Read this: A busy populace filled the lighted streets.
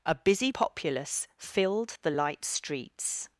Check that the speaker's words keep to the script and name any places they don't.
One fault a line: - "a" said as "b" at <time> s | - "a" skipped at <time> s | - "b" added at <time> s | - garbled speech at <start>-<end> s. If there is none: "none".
- "lighted" said as "light" at 2.1 s